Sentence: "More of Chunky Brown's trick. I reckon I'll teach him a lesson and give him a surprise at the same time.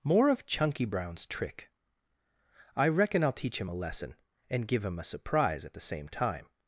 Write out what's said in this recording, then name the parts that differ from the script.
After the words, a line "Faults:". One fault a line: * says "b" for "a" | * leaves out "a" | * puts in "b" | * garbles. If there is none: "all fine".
"More of Chunky Brown's trick. I reckon I'll teach him a lesson and give him a surprise at the same time.
Faults:
all fine